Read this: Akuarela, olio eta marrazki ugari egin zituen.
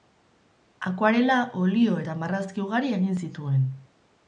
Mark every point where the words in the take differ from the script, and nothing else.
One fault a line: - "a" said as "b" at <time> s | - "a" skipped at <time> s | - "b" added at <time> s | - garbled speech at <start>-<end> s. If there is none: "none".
none